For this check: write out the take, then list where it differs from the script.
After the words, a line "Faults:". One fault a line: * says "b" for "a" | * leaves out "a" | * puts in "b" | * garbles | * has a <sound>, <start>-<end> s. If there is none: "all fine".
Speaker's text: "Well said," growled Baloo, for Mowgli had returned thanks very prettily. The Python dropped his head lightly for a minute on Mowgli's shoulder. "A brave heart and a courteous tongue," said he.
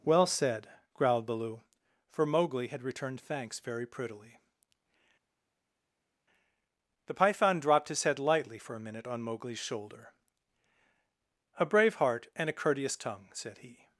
"Well said," growled Baloo, for Mowgli had returned thanks very prettily. The Python dropped his head lightly for a minute on Mowgli's shoulder. "A brave heart and a courteous tongue," said he.
Faults:
all fine